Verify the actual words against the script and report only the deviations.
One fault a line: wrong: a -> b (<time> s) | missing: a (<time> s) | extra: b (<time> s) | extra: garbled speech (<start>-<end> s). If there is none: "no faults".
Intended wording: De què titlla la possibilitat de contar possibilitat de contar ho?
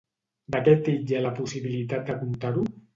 missing: possibilitat de contar (2.6 s)